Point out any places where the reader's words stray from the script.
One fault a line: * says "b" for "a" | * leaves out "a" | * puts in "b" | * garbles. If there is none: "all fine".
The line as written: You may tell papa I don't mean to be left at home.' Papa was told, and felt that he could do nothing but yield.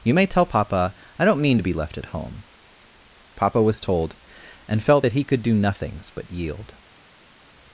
* says "nothings" for "nothing"